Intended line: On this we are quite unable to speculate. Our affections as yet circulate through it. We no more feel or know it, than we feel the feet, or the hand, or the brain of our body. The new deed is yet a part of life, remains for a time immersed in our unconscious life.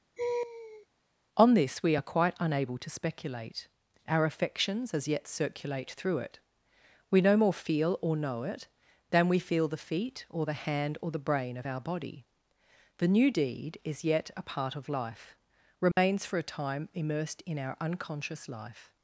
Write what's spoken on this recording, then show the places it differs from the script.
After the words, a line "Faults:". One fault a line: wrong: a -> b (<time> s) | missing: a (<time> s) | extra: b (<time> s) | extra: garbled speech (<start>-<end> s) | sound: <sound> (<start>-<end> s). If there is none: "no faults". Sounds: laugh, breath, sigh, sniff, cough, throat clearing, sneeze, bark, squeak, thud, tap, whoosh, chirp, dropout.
On this we are quite unable to speculate. Our affections as yet circulate through it. We no more feel or know it, than we feel the feet, or the hand, or the brain of our body. The new deed is yet a part of life, remains for a time immersed in our unconscious life.
Faults:
sound: laugh (0.2-0.9 s)
sound: dropout (15.9-16.0 s)